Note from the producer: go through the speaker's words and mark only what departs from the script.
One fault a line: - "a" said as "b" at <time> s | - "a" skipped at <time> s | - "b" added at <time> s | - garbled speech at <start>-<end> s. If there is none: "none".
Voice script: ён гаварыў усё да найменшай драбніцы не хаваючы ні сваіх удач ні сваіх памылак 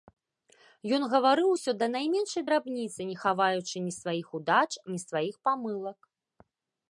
none